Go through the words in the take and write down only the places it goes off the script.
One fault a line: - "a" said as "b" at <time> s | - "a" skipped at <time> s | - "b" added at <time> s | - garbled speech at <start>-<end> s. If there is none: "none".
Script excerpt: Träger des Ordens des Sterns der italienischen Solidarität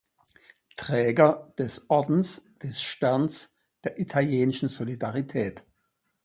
none